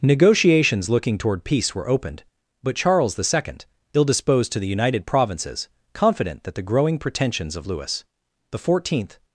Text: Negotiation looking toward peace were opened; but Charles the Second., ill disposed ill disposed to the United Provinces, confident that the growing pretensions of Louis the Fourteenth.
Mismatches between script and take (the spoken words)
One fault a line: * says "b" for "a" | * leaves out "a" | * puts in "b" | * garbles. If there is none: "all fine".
* says "Negotiations" for "Negotiation"
* leaves out "ill disposed"